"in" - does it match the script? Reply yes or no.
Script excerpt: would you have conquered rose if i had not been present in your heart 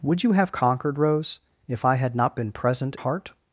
no